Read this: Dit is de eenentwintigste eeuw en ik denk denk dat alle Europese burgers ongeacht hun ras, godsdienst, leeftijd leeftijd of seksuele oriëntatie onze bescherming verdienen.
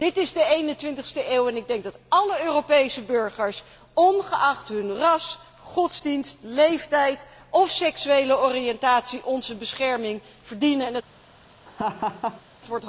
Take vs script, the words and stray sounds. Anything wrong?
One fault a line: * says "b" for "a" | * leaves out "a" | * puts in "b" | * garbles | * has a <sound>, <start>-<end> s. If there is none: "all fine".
* leaves out "denk"
* leaves out "leeftijd"
* has a laugh, 11.7-12.4 s